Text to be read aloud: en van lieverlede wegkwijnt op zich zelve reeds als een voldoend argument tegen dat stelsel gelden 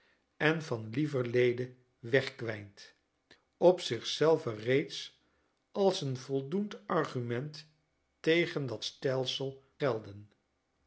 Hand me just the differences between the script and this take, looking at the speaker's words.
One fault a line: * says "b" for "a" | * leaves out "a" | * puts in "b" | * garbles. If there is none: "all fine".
all fine